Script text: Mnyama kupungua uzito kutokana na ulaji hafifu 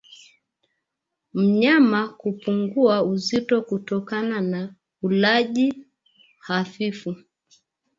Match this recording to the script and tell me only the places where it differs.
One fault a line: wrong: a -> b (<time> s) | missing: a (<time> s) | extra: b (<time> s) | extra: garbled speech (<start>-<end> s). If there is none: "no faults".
no faults